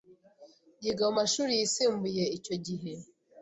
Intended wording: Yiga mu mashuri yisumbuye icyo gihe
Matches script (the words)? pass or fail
pass